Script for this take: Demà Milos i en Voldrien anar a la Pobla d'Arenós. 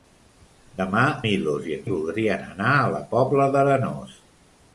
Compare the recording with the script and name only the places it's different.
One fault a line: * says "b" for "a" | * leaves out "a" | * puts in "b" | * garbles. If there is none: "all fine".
all fine